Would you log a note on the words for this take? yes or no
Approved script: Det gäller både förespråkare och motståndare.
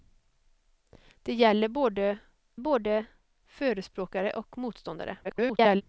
yes